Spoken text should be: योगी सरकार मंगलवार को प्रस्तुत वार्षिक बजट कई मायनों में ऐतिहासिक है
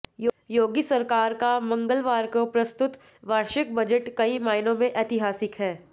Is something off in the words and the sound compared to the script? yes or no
yes